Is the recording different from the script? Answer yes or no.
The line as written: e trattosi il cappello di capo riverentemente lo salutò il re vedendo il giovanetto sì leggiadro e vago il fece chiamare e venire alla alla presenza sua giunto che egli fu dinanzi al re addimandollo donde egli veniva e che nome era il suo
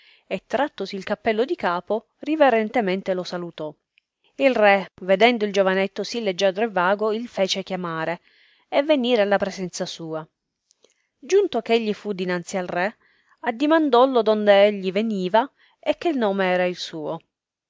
yes